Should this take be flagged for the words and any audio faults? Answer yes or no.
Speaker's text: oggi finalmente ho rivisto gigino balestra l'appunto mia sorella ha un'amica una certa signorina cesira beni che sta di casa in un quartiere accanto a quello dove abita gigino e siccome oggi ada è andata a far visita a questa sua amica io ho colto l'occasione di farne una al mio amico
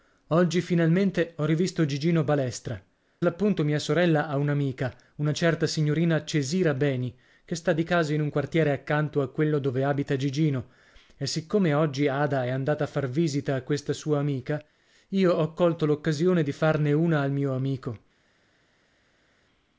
no